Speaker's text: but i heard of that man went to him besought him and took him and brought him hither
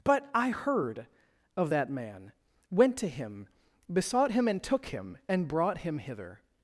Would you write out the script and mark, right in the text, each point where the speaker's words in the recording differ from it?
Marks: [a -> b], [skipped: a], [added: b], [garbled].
but i heard of that man went to him besought him and took him and brought him hither